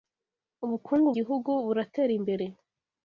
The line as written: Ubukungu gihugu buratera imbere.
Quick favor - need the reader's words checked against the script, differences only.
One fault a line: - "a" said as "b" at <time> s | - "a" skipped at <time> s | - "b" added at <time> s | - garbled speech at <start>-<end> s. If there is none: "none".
none